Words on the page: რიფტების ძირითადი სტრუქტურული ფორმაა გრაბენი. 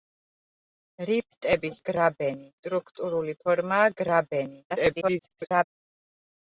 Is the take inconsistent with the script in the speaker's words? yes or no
yes